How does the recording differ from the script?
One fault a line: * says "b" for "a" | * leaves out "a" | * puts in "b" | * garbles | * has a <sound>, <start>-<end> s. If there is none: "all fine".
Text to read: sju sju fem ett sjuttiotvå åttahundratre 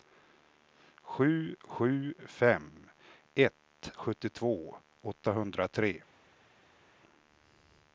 all fine